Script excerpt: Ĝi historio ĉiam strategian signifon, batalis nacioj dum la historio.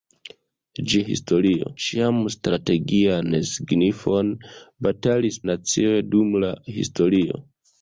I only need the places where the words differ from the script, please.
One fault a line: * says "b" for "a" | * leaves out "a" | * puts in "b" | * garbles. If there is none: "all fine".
all fine